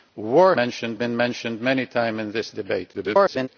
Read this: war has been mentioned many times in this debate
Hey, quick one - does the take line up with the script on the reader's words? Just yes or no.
no